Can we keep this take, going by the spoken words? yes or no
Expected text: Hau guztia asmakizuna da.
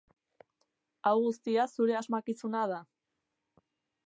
no